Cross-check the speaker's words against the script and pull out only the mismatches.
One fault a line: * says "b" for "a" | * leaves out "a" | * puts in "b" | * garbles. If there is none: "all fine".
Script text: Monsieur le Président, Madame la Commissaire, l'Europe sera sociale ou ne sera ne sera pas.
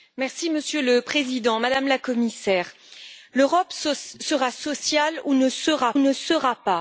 all fine